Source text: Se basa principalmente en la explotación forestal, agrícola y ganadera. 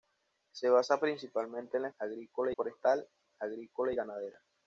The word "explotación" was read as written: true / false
false